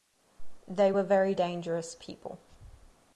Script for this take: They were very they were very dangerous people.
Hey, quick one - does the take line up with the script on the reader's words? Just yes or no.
no